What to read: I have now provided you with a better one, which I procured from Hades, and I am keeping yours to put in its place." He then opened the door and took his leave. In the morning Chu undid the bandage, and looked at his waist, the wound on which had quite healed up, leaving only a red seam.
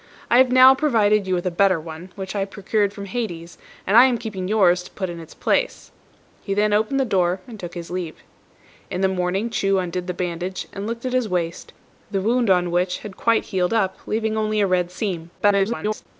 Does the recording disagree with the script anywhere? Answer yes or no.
yes